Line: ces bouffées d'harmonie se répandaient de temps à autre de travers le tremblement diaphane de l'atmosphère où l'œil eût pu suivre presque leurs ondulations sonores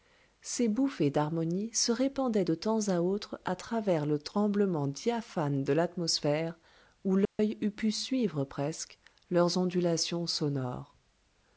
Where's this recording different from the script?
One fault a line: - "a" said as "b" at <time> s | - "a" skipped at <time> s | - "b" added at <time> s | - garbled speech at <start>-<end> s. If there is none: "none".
- "de" said as "à" at 3.4 s